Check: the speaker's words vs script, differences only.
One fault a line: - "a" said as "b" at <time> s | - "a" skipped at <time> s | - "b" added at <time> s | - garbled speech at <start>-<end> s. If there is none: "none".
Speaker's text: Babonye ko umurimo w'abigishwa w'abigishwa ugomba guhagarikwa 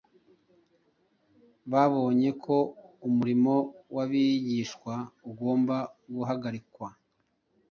- "w'abigishwa" skipped at 4.9 s